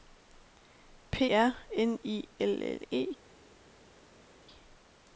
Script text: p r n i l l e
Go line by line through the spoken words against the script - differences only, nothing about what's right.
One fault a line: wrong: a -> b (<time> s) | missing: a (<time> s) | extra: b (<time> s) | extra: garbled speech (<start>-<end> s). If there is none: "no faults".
no faults